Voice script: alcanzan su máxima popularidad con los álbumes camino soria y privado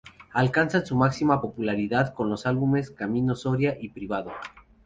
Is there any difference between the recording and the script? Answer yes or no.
no